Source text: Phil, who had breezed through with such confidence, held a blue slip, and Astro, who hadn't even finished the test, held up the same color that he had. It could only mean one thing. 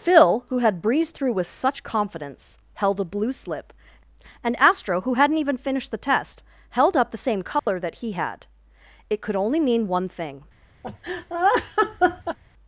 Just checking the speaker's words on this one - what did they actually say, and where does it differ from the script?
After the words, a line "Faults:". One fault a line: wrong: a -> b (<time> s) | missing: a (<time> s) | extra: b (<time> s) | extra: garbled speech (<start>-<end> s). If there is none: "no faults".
Phil, who had breezed through with such confidence, held a blue slip, and Astro, who hadn't even finished the test, held up the same color that he had. It could only mean one thing.
Faults:
no faults